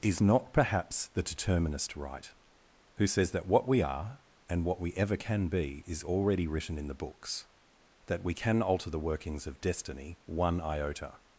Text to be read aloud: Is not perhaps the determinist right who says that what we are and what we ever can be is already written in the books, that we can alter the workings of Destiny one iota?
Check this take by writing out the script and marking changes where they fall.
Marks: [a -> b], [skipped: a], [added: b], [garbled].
Is not perhaps the determinist right who says that what we are and what we ever can be is already written in the books, that we can alter the workings of Destiny one iota?